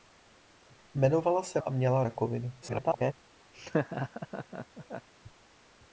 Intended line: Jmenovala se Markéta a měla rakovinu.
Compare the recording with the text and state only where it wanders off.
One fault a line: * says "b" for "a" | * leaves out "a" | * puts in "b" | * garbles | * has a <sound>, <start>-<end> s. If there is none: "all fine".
* leaves out "Markéta"
* garbles
* has a laugh, 3.5-5.1 s